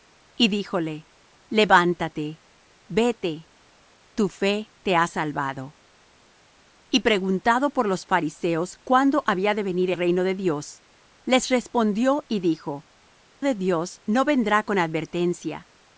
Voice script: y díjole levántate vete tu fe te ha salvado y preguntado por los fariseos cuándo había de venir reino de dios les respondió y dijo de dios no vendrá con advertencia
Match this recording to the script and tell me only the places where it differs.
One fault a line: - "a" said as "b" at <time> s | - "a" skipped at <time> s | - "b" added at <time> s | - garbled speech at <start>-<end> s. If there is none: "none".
none